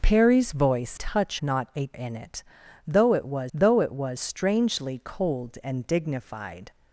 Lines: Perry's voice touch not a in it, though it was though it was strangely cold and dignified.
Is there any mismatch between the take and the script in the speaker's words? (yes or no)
no